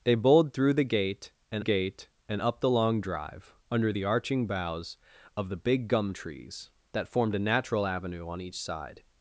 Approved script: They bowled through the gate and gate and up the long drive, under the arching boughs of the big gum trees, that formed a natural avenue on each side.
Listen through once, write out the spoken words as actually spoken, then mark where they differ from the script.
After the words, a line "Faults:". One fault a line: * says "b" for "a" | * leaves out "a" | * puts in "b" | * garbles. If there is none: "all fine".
They bowled through the gate and gate and up the long drive, under the arching boughs of the big gum trees, that formed a natural avenue on each side.
Faults:
all fine